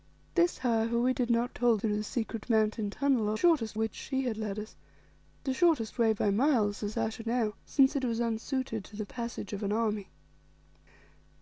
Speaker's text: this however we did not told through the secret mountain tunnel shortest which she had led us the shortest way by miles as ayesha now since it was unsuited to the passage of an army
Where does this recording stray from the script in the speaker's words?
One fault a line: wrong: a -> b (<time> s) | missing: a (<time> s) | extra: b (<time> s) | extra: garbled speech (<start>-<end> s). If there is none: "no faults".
no faults